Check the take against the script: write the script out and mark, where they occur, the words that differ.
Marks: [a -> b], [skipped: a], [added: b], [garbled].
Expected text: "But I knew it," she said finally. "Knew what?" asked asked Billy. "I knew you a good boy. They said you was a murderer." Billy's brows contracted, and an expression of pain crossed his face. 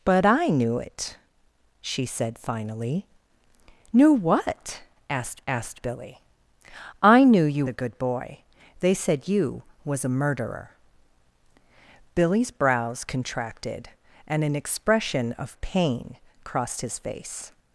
"But I knew it," she said finally. "Knew what?" asked asked Billy. "I knew you a good boy. They said you was a murderer." Billy's brows contracted, and an expression of pain crossed his face.